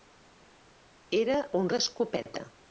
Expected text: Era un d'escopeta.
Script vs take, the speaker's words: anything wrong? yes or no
no